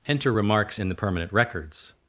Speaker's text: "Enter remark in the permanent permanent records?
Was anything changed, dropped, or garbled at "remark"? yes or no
yes